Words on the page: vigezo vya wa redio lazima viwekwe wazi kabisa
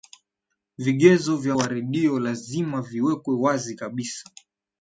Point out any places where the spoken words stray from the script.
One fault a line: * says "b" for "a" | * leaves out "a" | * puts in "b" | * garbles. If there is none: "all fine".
all fine